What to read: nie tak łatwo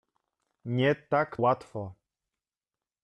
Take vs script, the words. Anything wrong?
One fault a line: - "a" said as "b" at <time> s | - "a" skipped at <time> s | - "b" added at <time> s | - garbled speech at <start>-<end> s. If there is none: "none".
none